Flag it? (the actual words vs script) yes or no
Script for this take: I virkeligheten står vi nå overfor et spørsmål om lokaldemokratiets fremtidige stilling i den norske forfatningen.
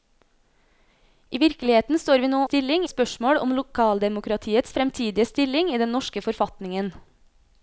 yes